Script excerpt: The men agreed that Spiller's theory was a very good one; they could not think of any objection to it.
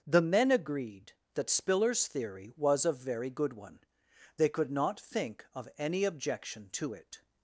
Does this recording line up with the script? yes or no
yes